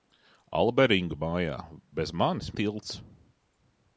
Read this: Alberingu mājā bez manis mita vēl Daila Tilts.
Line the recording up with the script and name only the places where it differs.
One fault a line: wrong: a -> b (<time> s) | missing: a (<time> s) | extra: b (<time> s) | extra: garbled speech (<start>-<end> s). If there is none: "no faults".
missing: mita vēl Daila (2.5 s)